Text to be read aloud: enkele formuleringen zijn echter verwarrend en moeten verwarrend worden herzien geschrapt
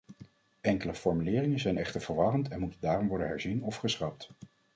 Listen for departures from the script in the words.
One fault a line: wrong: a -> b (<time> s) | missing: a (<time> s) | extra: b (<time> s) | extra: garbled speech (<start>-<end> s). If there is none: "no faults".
wrong: verwarrend -> daarom (2.8 s)
extra: of (3.6 s)